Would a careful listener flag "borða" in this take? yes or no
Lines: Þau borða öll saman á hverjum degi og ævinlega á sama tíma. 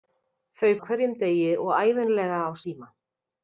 yes